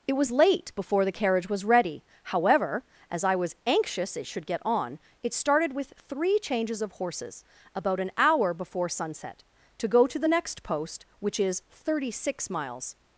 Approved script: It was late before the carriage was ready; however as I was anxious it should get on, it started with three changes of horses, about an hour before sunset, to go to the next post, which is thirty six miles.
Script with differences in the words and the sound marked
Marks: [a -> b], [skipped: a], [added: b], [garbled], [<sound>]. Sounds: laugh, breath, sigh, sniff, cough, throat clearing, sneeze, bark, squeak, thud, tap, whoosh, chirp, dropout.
It was late before the carriage was ready; however as I was anxious it should get on, it started with three changes of horses, about an hour before sunset, to go to the next post, which is thirty six miles.